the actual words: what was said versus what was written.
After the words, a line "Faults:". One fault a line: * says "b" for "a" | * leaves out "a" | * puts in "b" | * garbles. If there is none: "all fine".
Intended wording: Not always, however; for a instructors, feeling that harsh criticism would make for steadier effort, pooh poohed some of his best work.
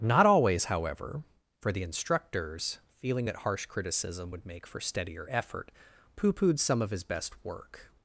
Not always, however; for the instructors, feeling that harsh criticism would make for steadier effort, pooh poohed some of his best work.
Faults:
* says "the" for "a"